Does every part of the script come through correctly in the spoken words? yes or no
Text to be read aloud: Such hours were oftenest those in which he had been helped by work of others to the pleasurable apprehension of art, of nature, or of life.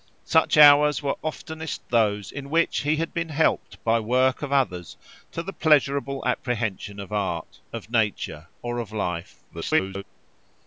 no